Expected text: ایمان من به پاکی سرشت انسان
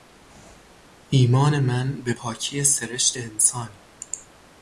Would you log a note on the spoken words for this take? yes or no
no